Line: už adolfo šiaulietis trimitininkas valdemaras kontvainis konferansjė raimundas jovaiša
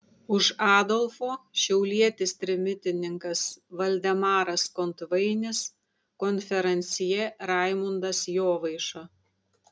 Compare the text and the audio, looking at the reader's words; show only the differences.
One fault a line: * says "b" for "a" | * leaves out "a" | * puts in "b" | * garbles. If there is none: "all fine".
all fine